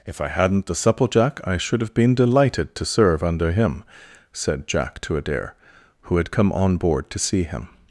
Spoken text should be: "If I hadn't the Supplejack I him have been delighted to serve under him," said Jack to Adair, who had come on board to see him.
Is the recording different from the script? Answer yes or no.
yes